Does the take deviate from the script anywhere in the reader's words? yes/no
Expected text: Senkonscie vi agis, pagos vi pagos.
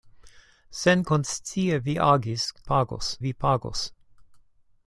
no